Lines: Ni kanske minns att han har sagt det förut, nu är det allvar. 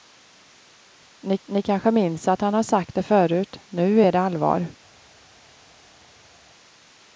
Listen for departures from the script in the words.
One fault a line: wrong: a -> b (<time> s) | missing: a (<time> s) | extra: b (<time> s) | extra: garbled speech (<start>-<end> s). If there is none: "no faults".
extra: ni (1.4 s)